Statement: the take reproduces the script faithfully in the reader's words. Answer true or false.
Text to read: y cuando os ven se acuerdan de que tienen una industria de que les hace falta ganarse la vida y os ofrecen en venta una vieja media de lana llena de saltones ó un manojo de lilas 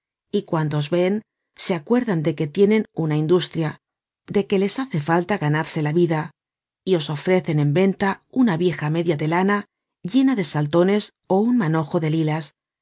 true